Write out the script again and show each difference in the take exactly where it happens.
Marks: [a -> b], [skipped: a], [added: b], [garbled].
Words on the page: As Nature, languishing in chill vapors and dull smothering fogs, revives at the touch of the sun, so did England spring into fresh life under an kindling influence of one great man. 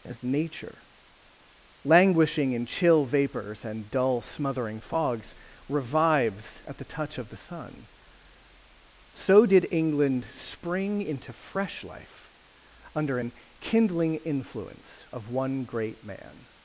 As Nature, languishing in chill vapors and dull smothering fogs, revives at the touch of the sun, so did England spring into fresh life under an kindling influence of one great man.